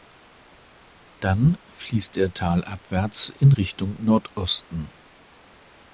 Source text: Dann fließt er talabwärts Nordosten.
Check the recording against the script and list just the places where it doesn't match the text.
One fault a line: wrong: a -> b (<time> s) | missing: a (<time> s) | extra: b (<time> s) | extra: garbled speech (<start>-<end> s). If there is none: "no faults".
extra: in Richtung (3.4 s)